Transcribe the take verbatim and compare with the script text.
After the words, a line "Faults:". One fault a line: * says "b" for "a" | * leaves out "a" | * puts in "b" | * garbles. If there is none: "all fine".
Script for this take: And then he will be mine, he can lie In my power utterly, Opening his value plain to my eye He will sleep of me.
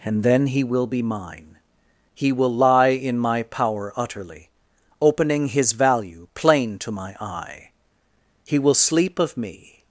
And then he will be mine, he will lie In my power utterly, Opening his value plain to my eye He will sleep of me.
Faults:
* says "will" for "can"